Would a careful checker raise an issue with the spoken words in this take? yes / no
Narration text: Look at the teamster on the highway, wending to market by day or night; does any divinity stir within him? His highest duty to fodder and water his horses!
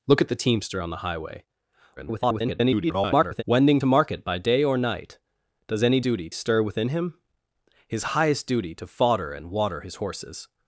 yes